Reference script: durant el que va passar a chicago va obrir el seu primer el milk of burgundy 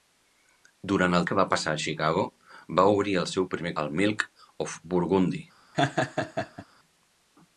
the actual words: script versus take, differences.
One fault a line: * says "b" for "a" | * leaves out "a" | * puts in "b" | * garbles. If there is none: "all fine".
all fine